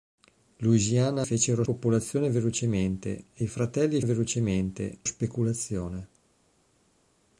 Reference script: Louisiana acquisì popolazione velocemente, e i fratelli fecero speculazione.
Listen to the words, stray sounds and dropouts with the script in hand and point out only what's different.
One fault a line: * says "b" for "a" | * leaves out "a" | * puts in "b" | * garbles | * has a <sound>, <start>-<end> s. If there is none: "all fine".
* says "fecero" for "acquisì"
* says "velocemente" for "fecero"